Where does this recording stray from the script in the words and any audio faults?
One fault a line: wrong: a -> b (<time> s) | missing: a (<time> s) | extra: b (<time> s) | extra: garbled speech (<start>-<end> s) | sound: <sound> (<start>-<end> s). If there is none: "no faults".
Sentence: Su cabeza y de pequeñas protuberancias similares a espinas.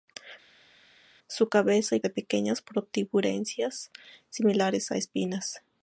no faults